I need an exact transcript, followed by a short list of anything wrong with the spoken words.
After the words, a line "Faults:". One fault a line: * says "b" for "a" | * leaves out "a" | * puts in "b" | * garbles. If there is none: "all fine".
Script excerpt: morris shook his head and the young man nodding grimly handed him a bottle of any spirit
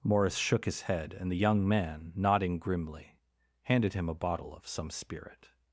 morris shook his head and the young man nodding grimly handed him a bottle of some spirit
Faults:
* says "some" for "any"